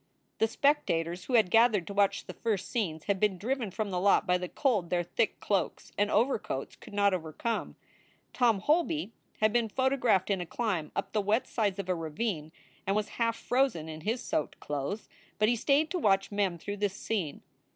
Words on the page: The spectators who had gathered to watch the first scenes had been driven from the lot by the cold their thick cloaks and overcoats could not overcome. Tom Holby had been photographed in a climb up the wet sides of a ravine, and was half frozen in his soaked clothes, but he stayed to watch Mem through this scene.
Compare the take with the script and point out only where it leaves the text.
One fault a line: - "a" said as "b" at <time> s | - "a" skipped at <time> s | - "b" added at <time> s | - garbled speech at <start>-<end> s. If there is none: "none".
none